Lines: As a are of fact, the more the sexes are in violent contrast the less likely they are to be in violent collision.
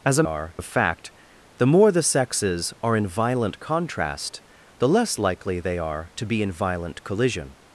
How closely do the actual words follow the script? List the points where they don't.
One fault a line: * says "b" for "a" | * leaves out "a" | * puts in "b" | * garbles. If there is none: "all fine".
all fine